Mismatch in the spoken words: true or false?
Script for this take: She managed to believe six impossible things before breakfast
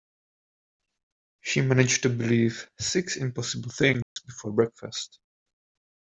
false